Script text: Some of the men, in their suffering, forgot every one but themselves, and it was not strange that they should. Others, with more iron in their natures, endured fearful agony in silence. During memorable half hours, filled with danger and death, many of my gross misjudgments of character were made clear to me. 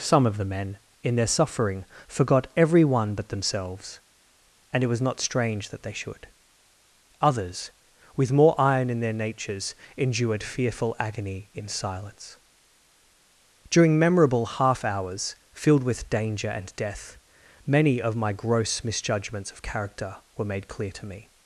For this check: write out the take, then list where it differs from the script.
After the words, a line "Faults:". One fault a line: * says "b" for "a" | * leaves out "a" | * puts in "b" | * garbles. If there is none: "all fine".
Some of the men, in their suffering, forgot every one but themselves, and it was not strange that they should. Others, with more iron in their natures, endured fearful agony in silence. During memorable half hours, filled with danger and death, many of my gross misjudgments of character were made clear to me.
Faults:
all fine